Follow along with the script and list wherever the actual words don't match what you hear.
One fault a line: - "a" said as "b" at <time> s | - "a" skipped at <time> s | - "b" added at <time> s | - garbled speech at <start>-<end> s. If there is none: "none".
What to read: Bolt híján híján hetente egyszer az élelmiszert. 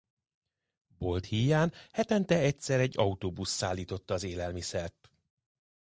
- "híján" skipped at 1.7 s
- "egy autóbusz szállította" added at 2.8 s